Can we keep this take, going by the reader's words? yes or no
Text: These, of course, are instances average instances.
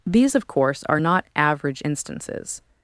no